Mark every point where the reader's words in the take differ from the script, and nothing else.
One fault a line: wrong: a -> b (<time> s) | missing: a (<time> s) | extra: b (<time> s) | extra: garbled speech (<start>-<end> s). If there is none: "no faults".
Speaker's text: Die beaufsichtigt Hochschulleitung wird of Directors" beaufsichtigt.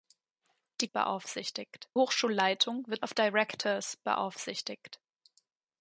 no faults